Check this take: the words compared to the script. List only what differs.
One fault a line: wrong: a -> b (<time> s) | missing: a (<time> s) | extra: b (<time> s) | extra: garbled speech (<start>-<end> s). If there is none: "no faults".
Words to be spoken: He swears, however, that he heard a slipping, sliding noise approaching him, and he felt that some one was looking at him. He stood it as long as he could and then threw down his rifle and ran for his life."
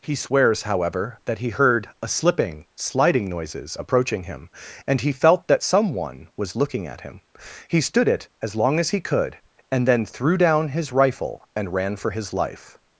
wrong: noise -> noises (3.3 s)